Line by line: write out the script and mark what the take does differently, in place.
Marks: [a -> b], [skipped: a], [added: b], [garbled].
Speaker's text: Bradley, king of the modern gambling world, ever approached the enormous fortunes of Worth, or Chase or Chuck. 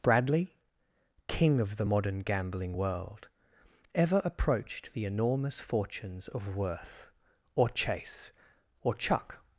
Bradley, king of the modern gambling world, ever approached the enormous fortunes of Worth, or Chase or Chuck.